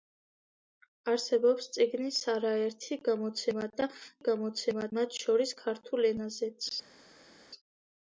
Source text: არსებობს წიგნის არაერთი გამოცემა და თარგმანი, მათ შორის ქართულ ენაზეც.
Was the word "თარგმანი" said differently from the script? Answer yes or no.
yes